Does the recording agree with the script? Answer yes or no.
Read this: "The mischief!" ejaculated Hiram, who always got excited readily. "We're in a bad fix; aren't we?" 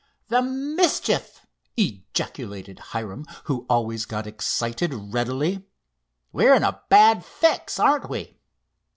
yes